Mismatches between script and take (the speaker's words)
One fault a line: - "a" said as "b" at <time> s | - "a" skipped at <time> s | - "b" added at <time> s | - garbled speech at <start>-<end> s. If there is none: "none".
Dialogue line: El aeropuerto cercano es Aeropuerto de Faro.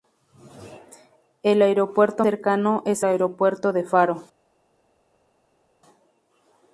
none